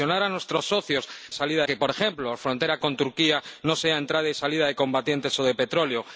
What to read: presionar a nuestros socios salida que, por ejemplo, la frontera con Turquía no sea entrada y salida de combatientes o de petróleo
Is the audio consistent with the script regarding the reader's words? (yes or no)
yes